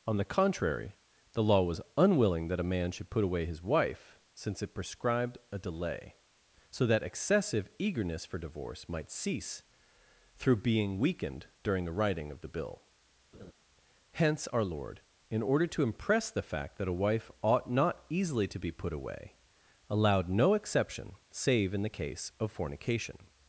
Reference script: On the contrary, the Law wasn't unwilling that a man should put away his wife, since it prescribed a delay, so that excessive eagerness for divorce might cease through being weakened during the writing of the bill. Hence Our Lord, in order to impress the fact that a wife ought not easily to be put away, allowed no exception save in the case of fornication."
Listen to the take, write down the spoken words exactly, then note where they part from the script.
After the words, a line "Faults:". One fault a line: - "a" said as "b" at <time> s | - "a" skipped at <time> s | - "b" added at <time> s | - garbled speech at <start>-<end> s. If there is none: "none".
On the contrary, the Law was unwilling that a man should put away his wife, since it prescribed a delay, so that excessive eagerness for divorce might cease through being weakened during the writing of the bill. Hence Our Lord, in order to impress the fact that a wife ought not easily to be put away, allowed no exception save in the case of fornication."
Faults:
- "wasn't" said as "was" at 1.6 s